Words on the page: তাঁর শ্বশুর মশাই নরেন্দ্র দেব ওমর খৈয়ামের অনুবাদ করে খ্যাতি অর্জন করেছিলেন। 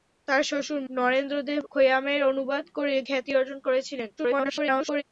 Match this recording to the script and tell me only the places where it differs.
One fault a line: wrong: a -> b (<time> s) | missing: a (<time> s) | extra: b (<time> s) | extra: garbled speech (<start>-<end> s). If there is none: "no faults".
missing: মশাই (0.8 s)
missing: ওমর (1.6 s)
extra: garbled speech (4.2-5.0 s)